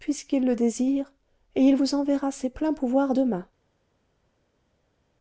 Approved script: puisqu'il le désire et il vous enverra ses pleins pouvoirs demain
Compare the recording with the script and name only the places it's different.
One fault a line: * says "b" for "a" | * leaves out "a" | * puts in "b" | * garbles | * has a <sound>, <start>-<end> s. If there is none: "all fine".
all fine